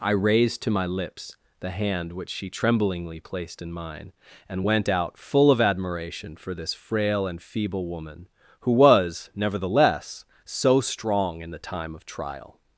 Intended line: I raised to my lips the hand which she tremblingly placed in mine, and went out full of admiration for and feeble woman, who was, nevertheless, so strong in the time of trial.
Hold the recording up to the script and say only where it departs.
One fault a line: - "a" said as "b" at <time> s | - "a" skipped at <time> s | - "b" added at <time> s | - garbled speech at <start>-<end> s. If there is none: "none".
- "this frail" added at 6.5 s